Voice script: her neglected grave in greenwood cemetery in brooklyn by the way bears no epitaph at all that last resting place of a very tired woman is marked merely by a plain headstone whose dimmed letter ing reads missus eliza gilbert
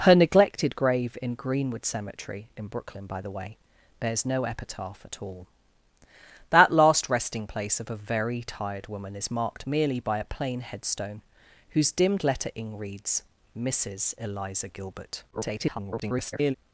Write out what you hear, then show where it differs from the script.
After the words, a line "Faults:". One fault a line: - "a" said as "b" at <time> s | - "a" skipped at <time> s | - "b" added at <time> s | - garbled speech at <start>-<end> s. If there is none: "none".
her neglected grave in greenwood cemetery in brooklyn by the way bears no epitaph at all that last resting place of a very tired woman is marked merely by a plain headstone whose dimmed letter ing reads missus eliza gilbert [garbled]
Faults:
- garbled speech at 15.3-16.6 s